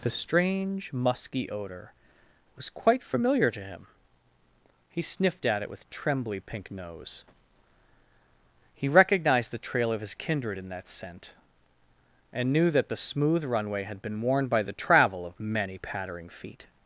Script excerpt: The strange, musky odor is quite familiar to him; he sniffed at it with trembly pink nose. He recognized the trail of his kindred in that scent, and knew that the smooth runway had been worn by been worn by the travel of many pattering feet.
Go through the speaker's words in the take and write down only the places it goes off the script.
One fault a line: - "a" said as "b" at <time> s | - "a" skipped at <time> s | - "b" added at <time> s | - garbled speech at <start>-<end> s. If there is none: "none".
- "is" said as "was" at 2.5 s
- "been worn by" skipped at 14.6 s